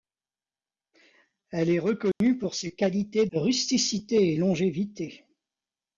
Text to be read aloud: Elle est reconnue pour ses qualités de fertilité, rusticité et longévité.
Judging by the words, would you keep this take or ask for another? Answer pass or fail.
fail